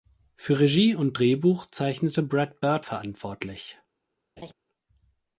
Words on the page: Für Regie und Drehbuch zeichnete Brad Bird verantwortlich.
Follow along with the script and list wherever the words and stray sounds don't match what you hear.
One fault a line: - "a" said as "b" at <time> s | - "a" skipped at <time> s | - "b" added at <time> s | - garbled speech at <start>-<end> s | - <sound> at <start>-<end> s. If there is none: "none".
- laugh at 4.4-4.5 s